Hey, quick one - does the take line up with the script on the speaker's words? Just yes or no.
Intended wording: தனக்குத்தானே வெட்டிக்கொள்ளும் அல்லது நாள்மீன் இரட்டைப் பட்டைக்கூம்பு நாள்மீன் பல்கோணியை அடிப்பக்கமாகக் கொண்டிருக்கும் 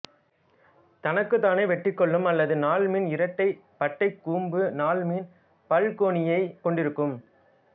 no